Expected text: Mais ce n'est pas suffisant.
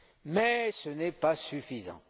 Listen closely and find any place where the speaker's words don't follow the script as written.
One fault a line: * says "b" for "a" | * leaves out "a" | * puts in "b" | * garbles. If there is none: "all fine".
all fine